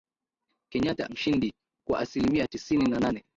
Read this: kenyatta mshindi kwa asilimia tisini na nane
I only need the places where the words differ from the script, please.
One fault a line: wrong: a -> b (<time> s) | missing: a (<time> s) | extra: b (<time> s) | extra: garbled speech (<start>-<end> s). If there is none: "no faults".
no faults